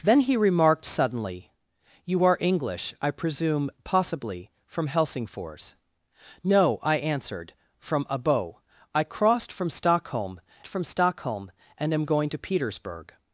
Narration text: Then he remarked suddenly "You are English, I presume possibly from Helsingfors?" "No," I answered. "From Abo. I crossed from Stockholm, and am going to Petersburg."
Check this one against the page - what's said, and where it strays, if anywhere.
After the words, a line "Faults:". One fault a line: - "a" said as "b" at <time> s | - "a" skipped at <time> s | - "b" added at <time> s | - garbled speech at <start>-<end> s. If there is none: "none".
Then he remarked suddenly "You are English, I presume possibly from Helsingfors?" "No," I answered. "From Abo. I crossed from Stockholm from Stockholm, and am going to Petersburg."
Faults:
- "from Stockholm" added at 10.7 s